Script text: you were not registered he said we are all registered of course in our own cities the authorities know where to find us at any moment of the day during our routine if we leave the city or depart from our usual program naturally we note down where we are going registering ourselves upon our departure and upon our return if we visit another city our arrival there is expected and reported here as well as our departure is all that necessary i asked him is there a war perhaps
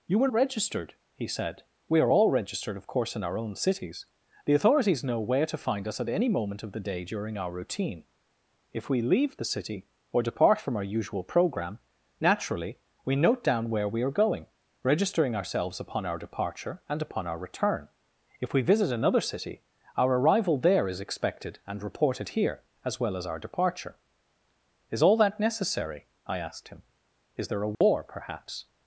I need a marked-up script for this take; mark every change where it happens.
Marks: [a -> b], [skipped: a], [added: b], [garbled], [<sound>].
you were [skipped: not] registered he said we are all registered of course in our own cities the authorities know where to find us at any moment of the day during our routine if we leave the city or depart from our usual program naturally we note down where we are going registering ourselves upon our departure and upon our return if we visit another city our arrival there is expected and reported here as well as our departure is all that necessary i asked him is there a war [dropout] perhaps